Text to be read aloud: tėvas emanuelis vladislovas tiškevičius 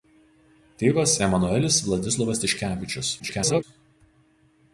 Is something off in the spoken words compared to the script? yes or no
yes